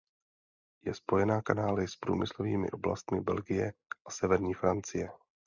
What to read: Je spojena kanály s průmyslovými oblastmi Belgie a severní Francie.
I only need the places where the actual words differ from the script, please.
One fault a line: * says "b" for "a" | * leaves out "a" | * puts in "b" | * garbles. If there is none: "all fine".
all fine